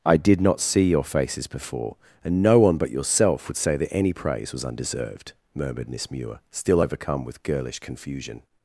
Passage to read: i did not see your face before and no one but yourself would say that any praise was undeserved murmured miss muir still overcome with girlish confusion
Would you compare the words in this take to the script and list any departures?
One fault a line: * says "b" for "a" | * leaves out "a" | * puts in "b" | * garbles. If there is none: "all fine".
* says "faces" for "face"